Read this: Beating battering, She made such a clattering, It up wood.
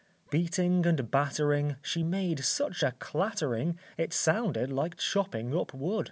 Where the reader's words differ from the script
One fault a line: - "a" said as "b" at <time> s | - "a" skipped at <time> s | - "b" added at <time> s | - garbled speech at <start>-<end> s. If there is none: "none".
- "and" added at 0.9 s
- "sounded like chopping" added at 4.1 s